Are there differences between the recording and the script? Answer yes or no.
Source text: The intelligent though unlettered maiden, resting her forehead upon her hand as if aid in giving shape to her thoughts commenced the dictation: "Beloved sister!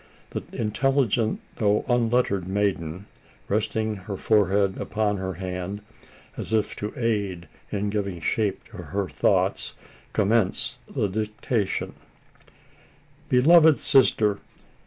yes